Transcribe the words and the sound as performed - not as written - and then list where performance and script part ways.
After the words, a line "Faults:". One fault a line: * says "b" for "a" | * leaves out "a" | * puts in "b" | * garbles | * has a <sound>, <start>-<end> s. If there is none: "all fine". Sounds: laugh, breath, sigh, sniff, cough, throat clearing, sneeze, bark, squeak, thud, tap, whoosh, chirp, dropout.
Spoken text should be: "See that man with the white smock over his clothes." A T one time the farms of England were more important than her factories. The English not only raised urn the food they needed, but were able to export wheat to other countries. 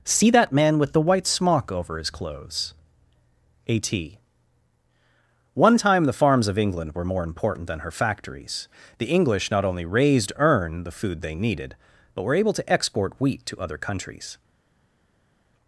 "See that man with the white smock over his clothes." A T one time the farms of England were more important than her factories. The English not only raised urn the food they needed, but were able to export wheat to other countries.
Faults:
all fine